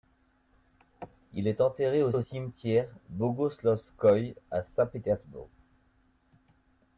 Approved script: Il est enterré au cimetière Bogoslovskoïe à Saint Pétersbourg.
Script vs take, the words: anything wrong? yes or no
yes